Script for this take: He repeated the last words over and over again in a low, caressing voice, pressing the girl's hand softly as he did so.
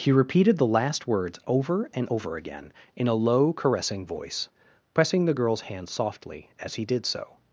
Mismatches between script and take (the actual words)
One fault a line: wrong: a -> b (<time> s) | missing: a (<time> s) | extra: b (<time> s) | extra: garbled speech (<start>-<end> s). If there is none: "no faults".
no faults